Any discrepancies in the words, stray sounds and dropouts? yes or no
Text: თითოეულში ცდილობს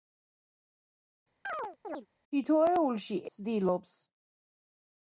yes